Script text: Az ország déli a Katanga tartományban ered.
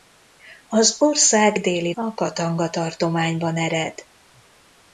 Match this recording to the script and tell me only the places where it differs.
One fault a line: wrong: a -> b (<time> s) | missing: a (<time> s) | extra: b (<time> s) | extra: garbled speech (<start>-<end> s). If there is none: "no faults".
no faults